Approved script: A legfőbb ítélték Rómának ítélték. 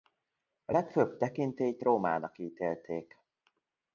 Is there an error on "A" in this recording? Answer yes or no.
no